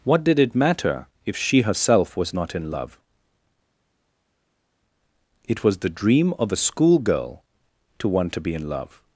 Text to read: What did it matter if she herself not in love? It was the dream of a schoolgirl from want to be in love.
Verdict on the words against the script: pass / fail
fail